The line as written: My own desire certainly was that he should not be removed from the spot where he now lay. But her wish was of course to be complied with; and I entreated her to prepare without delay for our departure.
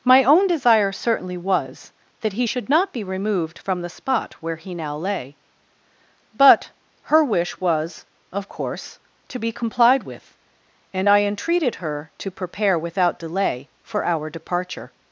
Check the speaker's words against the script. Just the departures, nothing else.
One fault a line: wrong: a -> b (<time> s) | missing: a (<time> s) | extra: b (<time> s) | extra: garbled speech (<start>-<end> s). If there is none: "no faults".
no faults